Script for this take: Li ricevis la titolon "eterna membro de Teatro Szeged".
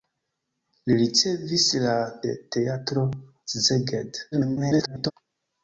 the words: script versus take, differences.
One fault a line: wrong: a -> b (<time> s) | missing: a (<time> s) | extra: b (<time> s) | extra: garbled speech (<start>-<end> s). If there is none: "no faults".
missing: titolon eterna membro (1.9 s)
extra: garbled speech (4.3-5.1 s)